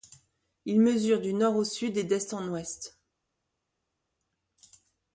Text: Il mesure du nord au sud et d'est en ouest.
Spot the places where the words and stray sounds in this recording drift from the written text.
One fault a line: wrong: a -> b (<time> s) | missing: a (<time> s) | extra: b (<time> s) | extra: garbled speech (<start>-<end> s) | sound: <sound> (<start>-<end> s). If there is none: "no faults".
no faults